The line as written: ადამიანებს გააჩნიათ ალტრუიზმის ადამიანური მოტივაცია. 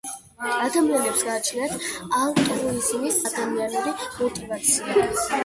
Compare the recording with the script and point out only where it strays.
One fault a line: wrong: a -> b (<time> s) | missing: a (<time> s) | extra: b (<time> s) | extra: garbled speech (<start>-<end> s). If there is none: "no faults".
no faults